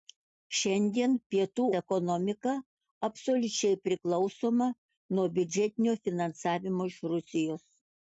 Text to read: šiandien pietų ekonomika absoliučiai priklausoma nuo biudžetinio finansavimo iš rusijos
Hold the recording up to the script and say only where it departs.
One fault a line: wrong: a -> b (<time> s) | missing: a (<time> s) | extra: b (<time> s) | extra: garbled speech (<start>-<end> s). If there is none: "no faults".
no faults